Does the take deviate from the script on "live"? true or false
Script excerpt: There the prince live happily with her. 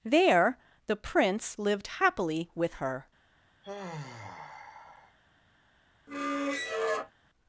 true